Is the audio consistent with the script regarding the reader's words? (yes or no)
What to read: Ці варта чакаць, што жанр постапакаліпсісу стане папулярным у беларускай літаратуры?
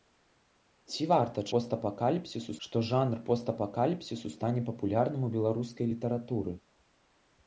no